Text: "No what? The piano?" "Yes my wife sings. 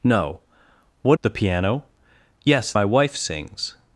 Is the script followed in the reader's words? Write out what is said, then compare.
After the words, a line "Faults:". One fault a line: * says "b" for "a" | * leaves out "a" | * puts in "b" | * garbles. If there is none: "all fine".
"No what? The piano?" "Yes my wife sings.
Faults:
all fine